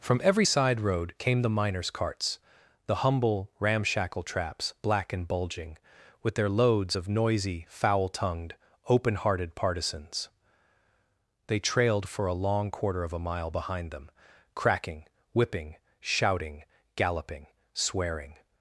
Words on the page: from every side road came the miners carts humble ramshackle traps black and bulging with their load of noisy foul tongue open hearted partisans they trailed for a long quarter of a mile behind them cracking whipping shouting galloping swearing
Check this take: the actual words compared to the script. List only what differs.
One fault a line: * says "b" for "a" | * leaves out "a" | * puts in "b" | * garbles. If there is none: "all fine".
* puts in "the"
* says "loads" for "load"
* says "tongued" for "tongue"